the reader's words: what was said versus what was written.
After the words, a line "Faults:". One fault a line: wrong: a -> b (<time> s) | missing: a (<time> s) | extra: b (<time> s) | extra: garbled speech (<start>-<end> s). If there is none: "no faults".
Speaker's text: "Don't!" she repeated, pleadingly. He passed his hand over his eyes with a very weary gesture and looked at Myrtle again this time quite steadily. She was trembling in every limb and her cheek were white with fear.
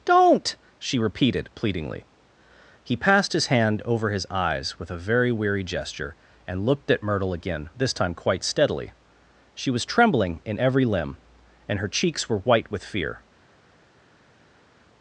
"Don't!" she repeated, pleadingly. He passed his hand over his eyes with a very weary gesture and looked at Myrtle again this time quite steadily. She was trembling in every limb and her cheeks were white with fear.
Faults:
wrong: cheek -> cheeks (11.9 s)